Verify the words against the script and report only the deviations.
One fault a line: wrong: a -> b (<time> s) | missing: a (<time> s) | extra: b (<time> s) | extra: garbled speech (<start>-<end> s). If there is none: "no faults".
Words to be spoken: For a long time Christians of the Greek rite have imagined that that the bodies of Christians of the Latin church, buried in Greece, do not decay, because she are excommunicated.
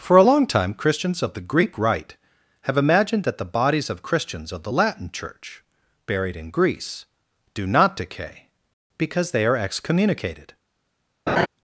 missing: that (3.4 s)
wrong: she -> they (9.3 s)